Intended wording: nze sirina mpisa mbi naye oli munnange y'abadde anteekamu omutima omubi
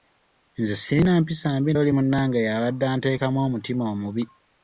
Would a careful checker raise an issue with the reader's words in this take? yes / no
yes